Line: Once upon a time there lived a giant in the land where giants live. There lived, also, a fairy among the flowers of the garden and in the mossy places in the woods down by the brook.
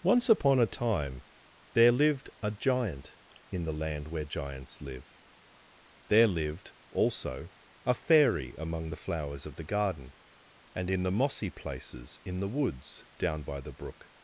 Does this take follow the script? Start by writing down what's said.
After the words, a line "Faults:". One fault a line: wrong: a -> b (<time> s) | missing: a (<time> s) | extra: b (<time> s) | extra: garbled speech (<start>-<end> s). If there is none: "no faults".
Once upon a time there lived a giant in the land where giants live. There lived, also, a fairy among the flowers of the garden and in the mossy places in the woods down by the brook.
Faults:
no faults